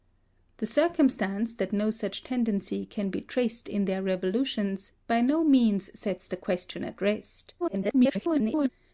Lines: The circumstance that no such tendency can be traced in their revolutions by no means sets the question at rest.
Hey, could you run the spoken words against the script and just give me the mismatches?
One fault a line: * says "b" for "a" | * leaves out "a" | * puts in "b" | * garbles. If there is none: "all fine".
* garbles